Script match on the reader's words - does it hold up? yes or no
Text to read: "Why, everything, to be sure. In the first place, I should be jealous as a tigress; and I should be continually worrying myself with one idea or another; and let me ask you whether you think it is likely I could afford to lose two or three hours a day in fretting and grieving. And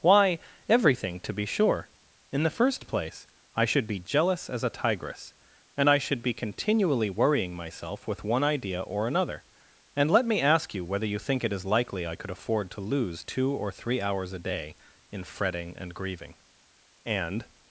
yes